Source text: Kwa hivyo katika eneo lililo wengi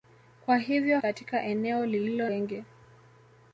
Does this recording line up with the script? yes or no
yes